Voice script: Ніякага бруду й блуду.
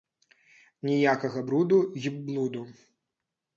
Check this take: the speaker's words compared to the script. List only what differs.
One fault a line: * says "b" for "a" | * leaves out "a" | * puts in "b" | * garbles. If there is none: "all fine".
all fine